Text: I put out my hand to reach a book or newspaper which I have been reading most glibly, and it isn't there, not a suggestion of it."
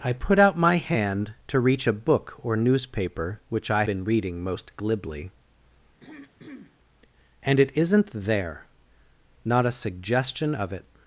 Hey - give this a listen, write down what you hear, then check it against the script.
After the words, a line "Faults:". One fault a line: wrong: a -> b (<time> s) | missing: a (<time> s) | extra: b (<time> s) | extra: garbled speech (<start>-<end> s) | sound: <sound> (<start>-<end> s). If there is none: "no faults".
I put out my hand to reach a book or newspaper which I been reading most glibly, and it isn't there, not a suggestion of it."
Faults:
missing: have (3.8 s)
sound: throat clearing (6.0-6.8 s)